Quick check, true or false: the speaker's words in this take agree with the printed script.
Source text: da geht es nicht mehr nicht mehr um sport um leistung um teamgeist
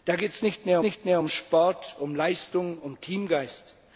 true